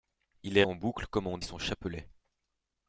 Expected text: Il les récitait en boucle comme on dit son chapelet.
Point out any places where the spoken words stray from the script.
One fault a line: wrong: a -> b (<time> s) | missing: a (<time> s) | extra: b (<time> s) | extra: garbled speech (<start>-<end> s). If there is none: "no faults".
missing: récitait (0.6 s)
missing: dit (1.4 s)